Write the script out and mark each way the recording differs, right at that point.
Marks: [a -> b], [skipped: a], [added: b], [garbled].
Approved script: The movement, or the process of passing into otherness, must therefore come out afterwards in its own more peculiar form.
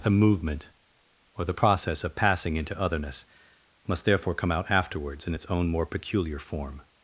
The movement, or the process of passing into otherness, must therefore come out afterwards in its own more peculiar form.